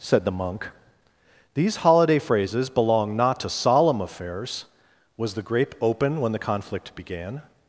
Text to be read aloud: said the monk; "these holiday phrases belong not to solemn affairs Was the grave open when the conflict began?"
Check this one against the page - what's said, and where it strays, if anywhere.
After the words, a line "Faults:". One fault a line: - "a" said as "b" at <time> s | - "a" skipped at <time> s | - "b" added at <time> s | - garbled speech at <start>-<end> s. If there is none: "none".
said the monk; "these holiday phrases belong not to solemn affairs Was the grape open when the conflict began?"
Faults:
- "grave" said as "grape" at 5.4 s